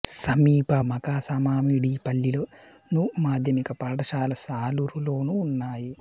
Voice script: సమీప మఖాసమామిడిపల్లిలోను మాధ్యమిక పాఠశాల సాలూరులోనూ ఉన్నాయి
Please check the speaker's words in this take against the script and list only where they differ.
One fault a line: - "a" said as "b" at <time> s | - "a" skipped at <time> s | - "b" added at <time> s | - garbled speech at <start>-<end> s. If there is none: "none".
none